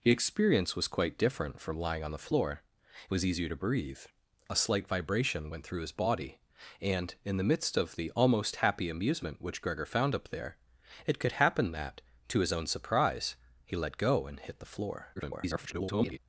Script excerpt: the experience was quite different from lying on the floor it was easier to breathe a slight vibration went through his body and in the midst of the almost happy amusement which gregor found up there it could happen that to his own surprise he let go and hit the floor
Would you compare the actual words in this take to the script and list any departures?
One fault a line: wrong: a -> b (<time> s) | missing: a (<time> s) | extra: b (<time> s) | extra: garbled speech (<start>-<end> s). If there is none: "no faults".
extra: garbled speech (15.2-16.2 s)